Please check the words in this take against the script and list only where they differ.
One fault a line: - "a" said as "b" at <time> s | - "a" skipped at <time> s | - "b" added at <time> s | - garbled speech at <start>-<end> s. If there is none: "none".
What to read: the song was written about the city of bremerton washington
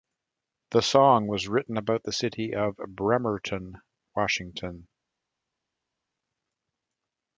none